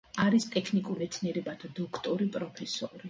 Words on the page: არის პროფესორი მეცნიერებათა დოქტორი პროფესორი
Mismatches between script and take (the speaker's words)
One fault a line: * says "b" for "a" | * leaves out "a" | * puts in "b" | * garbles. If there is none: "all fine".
* says "ტექნიკურ" for "პროფესორი"